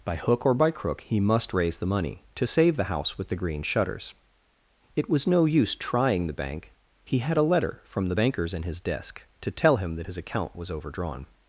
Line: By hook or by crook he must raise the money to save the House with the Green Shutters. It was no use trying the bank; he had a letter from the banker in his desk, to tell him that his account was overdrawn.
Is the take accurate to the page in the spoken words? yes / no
no